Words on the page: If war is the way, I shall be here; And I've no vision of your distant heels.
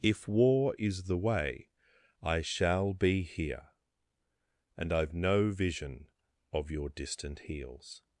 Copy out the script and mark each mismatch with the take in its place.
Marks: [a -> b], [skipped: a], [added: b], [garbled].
If war is the way, I shall be here; And I've no vision of your distant heels.